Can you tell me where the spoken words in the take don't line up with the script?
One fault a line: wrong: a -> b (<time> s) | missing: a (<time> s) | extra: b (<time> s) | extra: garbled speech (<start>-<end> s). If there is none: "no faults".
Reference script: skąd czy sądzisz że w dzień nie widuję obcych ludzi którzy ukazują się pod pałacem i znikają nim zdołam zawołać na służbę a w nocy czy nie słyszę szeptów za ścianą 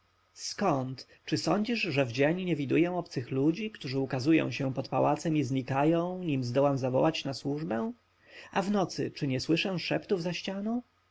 no faults